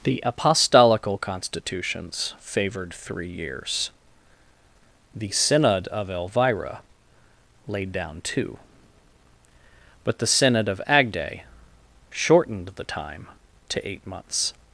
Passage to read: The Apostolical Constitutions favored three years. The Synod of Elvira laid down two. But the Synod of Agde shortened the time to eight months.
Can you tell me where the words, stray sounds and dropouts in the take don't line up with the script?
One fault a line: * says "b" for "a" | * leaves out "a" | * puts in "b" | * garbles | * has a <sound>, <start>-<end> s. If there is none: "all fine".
all fine